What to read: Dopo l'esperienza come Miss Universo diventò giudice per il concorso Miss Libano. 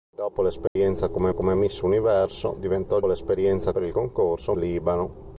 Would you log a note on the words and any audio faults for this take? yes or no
yes